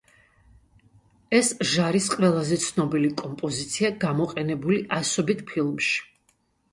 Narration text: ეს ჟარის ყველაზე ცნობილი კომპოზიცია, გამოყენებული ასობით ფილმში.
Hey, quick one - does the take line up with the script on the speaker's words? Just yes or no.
yes